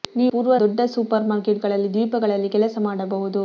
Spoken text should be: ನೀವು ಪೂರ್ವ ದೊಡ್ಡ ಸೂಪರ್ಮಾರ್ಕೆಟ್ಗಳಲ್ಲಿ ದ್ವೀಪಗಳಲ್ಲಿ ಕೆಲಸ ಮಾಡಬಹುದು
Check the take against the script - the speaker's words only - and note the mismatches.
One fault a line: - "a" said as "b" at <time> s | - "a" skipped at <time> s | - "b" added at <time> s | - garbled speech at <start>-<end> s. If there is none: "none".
none